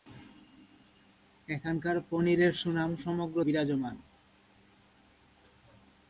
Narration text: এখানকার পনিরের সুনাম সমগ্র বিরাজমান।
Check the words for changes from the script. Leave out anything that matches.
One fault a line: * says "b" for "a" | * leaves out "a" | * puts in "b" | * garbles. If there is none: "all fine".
all fine